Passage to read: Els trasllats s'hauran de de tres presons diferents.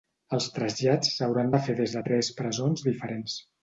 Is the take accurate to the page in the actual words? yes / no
no